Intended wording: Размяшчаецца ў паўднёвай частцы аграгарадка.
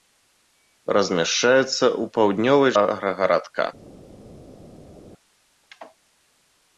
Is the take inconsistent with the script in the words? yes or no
yes